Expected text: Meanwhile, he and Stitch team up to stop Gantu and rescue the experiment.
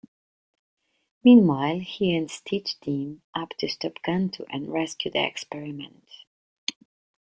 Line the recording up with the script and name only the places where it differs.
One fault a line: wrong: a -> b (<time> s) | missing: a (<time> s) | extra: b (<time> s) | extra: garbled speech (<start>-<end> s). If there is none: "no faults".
no faults